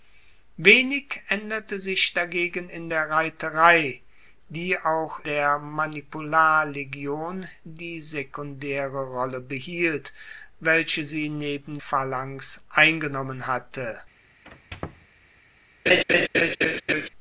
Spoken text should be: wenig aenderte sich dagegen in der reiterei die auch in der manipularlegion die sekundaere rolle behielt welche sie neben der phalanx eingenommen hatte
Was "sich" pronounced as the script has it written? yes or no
yes